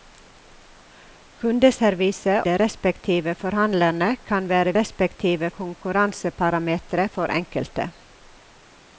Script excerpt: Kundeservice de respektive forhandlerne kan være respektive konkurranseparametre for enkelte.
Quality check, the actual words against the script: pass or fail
pass